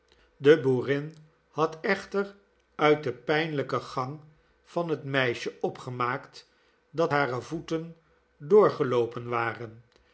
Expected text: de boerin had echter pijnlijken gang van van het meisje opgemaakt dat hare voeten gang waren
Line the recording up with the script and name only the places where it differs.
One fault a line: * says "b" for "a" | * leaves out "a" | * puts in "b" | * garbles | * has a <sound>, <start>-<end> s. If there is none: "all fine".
* puts in "uit den"
* leaves out "van"
* says "doorgeloopen" for "gang"